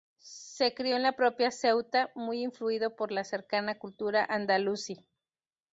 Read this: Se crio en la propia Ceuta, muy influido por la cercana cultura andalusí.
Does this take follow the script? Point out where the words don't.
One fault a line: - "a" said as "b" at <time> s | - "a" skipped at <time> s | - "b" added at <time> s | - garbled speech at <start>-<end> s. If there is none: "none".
none